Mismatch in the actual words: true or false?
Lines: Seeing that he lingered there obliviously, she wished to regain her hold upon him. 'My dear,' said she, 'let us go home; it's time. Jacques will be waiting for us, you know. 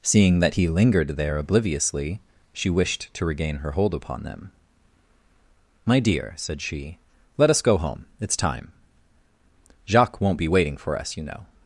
true